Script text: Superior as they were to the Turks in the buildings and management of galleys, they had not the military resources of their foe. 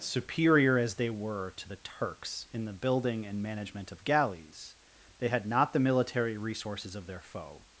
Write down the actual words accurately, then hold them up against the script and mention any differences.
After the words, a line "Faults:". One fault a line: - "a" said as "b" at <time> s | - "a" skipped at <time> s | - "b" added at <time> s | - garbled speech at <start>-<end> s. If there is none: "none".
Superior as they were to the Turks in the building and management of galleys, they had not the military resources of their foe.
Faults:
- "buildings" said as "building" at 2.7 s